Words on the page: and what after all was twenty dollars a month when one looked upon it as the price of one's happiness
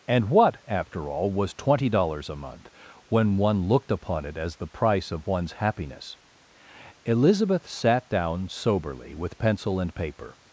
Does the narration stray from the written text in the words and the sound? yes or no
yes